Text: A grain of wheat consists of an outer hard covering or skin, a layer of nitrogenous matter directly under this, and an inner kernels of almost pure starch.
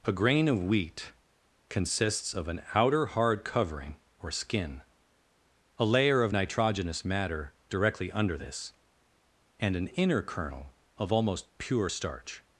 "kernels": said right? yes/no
no